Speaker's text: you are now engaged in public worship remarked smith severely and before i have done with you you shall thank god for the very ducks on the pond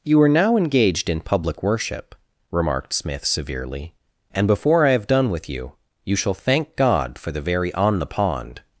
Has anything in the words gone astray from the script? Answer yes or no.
yes